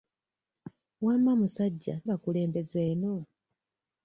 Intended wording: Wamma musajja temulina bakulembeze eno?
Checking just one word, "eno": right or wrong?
right